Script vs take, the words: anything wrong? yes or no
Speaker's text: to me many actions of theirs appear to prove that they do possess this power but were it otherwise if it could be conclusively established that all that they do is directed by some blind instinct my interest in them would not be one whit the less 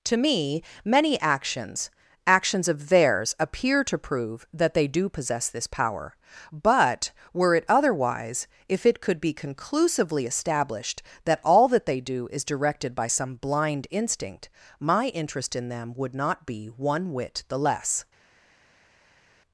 yes